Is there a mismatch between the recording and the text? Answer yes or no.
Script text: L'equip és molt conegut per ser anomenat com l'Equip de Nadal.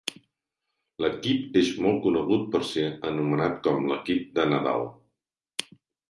no